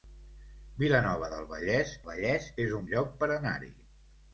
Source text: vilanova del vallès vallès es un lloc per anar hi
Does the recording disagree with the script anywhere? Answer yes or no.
no